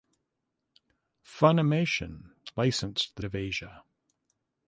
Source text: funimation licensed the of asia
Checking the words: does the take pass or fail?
pass